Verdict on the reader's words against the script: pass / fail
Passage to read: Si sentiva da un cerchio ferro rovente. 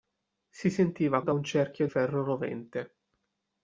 pass